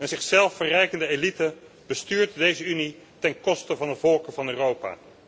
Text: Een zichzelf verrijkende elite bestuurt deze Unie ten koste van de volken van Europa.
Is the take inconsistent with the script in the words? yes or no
no